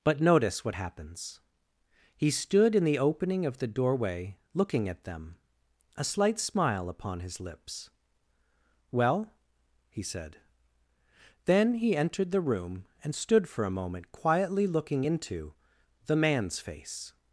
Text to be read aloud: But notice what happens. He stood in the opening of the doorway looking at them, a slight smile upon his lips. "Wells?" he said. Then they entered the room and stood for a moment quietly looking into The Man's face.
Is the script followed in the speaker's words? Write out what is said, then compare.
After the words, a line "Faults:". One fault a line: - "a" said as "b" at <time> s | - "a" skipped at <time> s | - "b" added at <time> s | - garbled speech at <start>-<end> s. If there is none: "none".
But notice what happens. He stood in the opening of the doorway looking at them, a slight smile upon his lips. "Well?" he said. Then he entered the room and stood for a moment quietly looking into The Man's face.
Faults:
- "Wells" said as "Well" at 8.9 s
- "they" said as "he" at 11.7 s